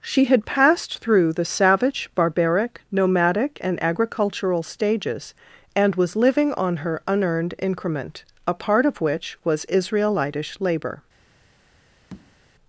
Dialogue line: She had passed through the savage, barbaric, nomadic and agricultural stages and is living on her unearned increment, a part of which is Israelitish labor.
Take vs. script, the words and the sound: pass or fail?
fail